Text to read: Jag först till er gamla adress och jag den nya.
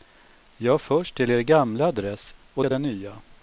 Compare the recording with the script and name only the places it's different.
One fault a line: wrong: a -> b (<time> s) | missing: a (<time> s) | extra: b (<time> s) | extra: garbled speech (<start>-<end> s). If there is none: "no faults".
no faults